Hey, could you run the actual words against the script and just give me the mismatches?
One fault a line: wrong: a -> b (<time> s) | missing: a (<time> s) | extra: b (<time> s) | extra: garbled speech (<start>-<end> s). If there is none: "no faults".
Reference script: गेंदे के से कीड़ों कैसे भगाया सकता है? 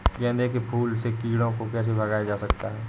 extra: फूल (0.6 s)
extra: को (1.5 s)
extra: जा (2.2 s)